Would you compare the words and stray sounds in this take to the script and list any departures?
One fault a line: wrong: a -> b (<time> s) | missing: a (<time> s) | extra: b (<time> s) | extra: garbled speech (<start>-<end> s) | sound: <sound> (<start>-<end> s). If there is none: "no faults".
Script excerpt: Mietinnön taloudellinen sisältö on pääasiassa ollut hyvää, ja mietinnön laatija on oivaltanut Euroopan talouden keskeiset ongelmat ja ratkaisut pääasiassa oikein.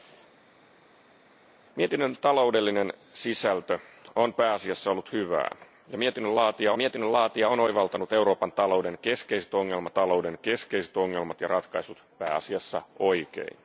extra: mietinnön laatija (6.8 s)
extra: talouden keskeiset ongelmat (9.9 s)